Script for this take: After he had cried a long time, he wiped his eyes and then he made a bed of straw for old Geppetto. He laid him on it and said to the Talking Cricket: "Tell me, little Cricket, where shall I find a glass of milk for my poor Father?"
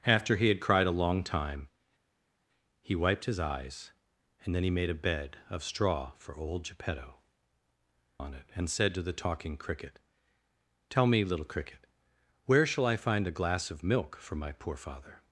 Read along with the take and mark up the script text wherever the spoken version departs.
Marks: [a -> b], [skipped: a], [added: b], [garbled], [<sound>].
After he had cried a long time, he wiped his eyes and then he made a bed of straw for old Geppetto. [skipped: He laid him] on it and said to the Talking Cricket: "Tell me, little Cricket, where shall I find a glass of milk for my poor Father?"